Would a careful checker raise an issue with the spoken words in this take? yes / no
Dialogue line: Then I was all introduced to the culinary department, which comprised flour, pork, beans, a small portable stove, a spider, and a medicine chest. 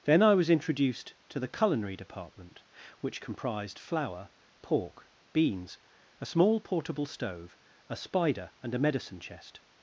yes